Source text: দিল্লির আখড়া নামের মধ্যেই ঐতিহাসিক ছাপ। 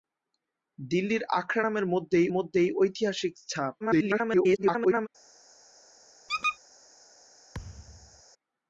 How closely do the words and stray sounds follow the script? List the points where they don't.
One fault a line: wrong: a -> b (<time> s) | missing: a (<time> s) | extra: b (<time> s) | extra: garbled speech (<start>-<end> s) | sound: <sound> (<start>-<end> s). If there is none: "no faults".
extra: মধ্যেই (2.3 s)
extra: garbled speech (3.8-5.1 s)
sound: squeak (6.3-6.6 s)
sound: thud (7.5-8.2 s)